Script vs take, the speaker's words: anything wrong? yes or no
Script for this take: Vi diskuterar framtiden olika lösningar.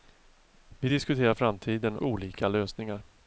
no